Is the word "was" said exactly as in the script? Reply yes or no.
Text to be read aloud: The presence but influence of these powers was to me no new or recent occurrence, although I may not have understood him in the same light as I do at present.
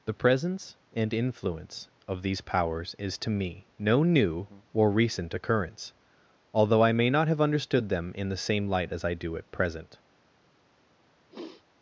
no